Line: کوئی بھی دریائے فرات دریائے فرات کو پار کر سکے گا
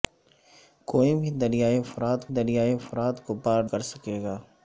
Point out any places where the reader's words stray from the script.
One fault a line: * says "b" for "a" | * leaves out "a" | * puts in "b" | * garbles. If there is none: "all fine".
all fine